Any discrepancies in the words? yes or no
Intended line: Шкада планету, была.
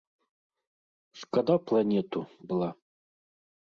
no